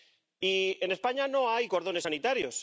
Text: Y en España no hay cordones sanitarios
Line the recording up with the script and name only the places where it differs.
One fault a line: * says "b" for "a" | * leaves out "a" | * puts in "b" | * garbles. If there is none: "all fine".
all fine